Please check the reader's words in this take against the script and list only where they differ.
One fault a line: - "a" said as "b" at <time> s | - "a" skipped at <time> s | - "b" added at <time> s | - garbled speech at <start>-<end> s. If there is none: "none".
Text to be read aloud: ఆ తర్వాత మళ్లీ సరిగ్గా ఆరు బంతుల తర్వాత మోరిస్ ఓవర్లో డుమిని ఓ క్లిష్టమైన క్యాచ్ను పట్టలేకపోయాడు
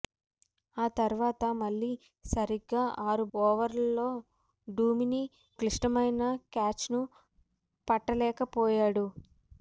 - "బంతుల తర్వాత మోరిస్" skipped at 3.2 s
- "ఓ" skipped at 5.2 s